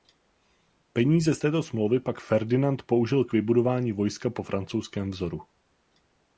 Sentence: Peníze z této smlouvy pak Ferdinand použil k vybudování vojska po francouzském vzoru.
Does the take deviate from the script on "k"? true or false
false